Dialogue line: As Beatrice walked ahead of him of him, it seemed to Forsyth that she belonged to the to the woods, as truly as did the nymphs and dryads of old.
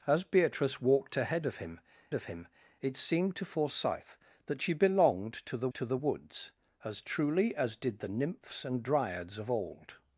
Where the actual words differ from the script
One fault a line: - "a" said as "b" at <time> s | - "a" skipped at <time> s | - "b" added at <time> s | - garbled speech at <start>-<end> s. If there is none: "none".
none